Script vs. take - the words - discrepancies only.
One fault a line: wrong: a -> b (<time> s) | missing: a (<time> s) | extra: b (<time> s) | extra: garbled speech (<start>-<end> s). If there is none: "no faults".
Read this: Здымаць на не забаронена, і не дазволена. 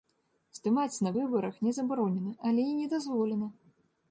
extra: выбарах (1.2 s)
extra: але (2.5 s)